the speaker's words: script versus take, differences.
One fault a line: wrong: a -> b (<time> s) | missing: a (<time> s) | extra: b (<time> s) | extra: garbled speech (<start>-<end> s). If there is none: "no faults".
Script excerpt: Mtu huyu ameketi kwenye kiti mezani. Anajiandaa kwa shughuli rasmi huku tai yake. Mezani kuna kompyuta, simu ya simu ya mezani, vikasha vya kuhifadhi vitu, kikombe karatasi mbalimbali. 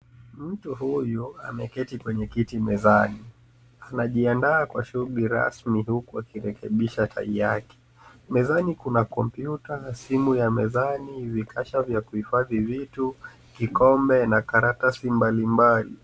extra: akirekebisha (6.2 s)
missing: simu ya (10.5 s)
extra: na (14.3 s)